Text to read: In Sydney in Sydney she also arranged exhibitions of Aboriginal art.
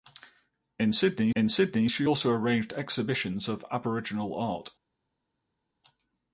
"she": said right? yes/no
yes